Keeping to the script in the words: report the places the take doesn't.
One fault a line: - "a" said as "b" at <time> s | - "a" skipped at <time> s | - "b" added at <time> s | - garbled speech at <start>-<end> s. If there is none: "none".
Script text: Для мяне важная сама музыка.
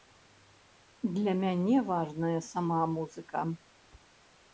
none